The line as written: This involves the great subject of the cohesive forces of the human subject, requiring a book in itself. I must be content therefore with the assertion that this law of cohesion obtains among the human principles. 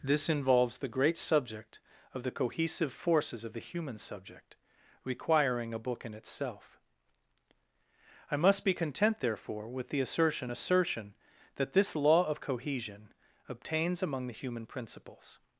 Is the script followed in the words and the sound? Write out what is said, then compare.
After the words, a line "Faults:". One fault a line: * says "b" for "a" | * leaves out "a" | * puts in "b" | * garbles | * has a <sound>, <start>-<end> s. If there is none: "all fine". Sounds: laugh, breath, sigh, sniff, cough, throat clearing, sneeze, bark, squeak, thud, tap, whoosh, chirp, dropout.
This involves the great subject of the cohesive forces of the human subject, requiring a book in itself. I must be content therefore with the assertion assertion that this law of cohesion obtains among the human principles.
Faults:
* puts in "assertion"